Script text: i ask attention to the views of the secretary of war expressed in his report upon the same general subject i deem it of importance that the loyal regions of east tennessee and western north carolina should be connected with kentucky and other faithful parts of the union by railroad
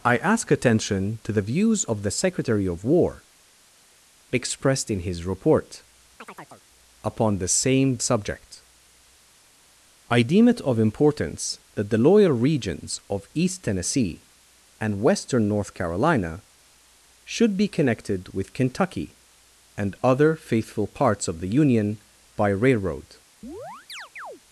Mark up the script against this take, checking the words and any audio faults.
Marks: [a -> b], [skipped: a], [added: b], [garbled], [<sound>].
i ask attention to the views of the secretary of war expressed in his report [chirp] upon the same [skipped: general] subject i deem it of importance that the loyal regions of east tennessee and western north carolina should be connected with kentucky and other faithful parts of the union by railroad [chirp]